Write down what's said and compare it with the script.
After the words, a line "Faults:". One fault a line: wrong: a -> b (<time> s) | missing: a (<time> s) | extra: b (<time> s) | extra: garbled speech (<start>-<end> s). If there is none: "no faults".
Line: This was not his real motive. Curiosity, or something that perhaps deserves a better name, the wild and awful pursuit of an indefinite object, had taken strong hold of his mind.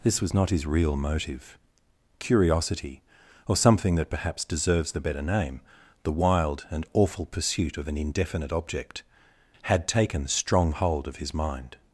This was not his real motive. Curiosity, or something that perhaps deserves the better name, the wild and awful pursuit of an indefinite object, had taken strong hold of his mind.
Faults:
wrong: a -> the (4.9 s)